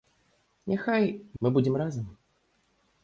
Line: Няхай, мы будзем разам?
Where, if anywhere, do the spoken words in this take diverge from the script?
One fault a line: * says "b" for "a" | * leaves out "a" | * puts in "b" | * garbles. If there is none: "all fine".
all fine